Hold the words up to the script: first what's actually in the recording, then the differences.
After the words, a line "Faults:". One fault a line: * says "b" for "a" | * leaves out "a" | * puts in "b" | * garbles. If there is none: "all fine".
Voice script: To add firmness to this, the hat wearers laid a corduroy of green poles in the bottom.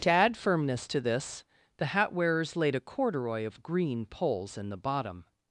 To add firmness to this, the hat wearers laid a corduroy of green poles in the bottom.
Faults:
all fine